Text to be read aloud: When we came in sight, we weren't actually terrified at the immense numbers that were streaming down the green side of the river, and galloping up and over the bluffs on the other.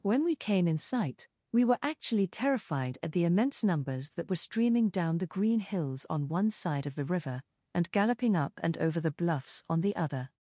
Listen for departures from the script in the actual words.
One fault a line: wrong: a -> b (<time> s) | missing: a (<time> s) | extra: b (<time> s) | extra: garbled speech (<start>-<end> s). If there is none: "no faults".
wrong: weren't -> were (1.6 s)
extra: hills on one (5.6 s)